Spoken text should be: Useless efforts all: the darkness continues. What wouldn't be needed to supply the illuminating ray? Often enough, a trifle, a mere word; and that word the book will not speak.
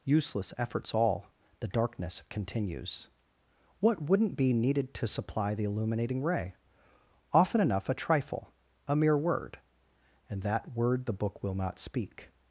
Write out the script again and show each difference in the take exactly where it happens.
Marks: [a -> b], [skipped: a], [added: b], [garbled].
Useless efforts all: the darkness continues. What wouldn't be needed to supply the illuminating ray? Often enough, a trifle, a mere word; and that word the book will not speak.